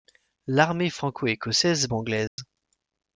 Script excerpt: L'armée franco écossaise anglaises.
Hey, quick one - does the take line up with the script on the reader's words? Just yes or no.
yes